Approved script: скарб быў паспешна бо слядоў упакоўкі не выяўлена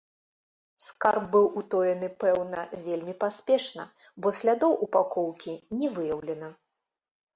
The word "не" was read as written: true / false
true